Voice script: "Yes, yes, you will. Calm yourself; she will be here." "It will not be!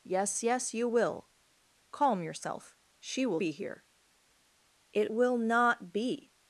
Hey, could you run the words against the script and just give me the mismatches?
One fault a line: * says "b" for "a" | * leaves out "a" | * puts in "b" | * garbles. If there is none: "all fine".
all fine